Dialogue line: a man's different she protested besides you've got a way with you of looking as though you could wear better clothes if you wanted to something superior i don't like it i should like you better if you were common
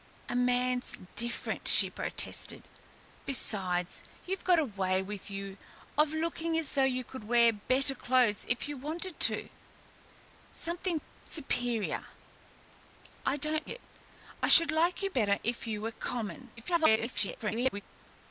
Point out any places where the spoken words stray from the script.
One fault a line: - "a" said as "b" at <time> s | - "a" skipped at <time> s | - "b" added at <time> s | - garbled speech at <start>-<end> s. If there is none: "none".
- "like" skipped at 13.7 s
- garbled speech at 16.6-17.8 s